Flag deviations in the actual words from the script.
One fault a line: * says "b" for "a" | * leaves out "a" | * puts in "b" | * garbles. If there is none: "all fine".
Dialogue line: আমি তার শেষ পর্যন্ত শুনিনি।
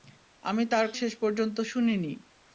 all fine